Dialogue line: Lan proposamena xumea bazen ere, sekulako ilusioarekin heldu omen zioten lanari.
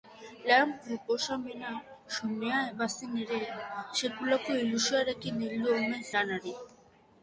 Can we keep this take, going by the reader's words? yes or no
no